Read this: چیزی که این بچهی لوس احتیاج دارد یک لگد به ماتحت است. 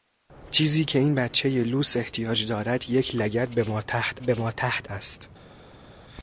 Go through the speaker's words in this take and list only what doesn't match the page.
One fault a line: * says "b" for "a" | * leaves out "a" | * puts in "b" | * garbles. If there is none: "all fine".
* puts in "به ماتحت"